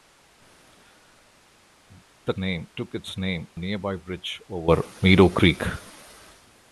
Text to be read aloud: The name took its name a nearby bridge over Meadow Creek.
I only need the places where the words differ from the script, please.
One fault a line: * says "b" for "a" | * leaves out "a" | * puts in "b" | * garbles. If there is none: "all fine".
all fine